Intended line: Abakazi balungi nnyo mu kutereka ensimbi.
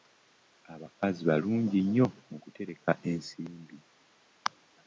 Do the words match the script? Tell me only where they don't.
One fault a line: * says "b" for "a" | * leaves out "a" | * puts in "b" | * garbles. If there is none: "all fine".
all fine